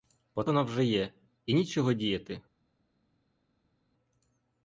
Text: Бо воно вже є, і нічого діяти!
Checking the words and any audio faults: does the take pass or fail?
pass